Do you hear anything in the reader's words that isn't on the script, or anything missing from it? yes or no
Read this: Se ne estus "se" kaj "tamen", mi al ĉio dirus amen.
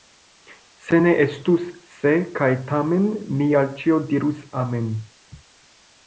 no